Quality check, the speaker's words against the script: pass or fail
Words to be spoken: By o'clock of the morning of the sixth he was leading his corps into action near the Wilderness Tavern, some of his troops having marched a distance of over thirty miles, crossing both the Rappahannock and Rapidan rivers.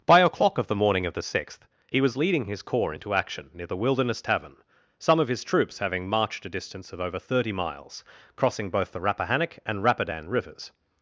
pass